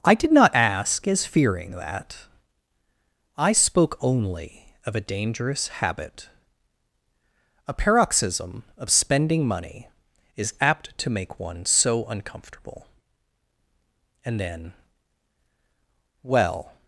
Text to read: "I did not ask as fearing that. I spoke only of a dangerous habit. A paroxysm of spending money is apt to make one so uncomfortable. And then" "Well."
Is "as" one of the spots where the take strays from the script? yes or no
no